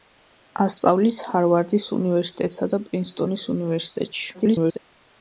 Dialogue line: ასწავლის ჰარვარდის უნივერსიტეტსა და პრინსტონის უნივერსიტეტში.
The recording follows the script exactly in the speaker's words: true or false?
false